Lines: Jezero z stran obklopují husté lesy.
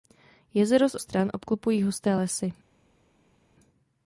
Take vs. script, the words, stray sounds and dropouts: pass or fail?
pass